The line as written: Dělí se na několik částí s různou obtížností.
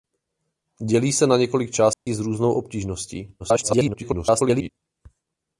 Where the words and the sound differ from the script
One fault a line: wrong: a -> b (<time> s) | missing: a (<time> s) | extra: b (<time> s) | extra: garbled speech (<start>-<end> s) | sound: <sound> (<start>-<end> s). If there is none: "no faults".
sound: dropout (1.9-2.1 s)
extra: garbled speech (3.4-4.7 s)